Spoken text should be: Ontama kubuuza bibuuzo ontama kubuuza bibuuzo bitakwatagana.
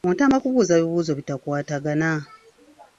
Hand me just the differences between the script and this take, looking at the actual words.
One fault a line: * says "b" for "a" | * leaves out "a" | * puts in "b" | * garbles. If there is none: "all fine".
* leaves out "ontama kubuuza bibuuzo"